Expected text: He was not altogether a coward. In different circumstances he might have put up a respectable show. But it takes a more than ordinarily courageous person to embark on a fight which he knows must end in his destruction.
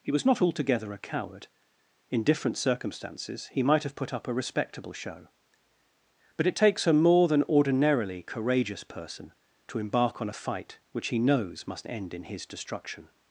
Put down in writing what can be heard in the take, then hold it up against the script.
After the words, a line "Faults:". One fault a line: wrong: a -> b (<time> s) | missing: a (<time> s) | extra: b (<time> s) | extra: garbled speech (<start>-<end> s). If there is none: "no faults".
He was not altogether a coward. In different circumstances he might have put up a respectable show. But it takes a more than ordinarily courageous person to embark on a fight which he knows must end in his destruction.
Faults:
no faults